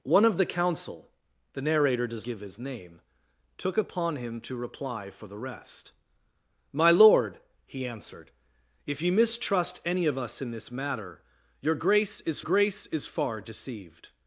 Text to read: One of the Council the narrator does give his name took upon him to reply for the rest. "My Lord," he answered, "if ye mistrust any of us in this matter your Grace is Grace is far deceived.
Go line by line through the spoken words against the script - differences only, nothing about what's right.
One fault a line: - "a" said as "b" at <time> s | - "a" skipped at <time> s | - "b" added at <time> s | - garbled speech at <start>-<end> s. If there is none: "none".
none